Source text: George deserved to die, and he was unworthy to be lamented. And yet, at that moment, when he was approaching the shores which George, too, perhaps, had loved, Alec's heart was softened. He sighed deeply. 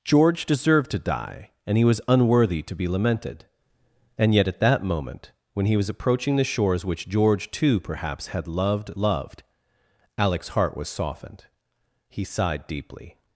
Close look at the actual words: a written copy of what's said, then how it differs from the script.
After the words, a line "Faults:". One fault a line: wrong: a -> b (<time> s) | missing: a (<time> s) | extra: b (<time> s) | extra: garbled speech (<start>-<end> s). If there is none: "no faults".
George deserved to die, and he was unworthy to be lamented. And yet, at that moment, when he was approaching the shores which George, too, perhaps, had loved loved, Alec's heart was softened. He sighed deeply.
Faults:
extra: loved (8.9 s)